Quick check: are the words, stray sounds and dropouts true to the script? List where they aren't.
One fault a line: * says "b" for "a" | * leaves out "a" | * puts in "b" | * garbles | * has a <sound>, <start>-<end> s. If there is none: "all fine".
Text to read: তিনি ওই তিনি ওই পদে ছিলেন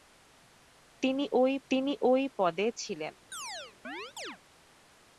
* has a chirp, 3.3-4.4 s